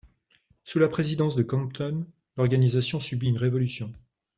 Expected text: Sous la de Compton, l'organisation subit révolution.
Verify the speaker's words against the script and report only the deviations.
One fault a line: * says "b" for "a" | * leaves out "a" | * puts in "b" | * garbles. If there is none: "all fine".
* puts in "présidence"
* puts in "une"